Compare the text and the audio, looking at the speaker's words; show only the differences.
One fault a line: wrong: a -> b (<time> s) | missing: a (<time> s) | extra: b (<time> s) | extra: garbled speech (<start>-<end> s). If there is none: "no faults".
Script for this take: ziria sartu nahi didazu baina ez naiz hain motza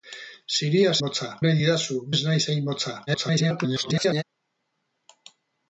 wrong: sartu -> motza (1.0 s)
missing: baina (2.0 s)
extra: garbled speech (3.1-4.2 s)